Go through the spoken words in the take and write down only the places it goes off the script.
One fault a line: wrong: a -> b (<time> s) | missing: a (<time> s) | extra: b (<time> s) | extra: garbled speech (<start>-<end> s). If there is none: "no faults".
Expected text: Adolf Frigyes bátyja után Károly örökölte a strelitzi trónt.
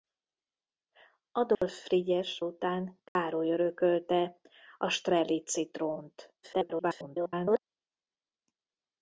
missing: bátyja (2.4 s)
extra: garbled speech (6.4-7.6 s)